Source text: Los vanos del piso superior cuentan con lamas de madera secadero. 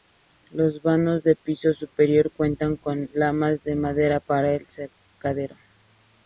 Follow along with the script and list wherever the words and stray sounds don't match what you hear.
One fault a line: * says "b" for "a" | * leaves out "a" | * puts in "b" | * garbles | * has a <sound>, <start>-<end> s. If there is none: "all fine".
* puts in "para el"